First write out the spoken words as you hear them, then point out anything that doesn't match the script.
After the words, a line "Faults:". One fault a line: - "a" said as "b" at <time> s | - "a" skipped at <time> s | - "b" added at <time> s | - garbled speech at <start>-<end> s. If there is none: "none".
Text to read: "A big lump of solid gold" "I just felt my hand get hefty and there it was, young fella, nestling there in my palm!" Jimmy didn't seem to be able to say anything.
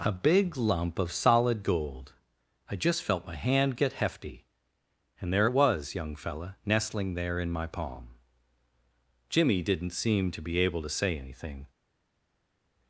"A big lump of solid gold" "I just felt my hand get hefty and there it was, young fella, nestling there in my palm!" Jimmy didn't seem to be able to say anything.
Faults:
none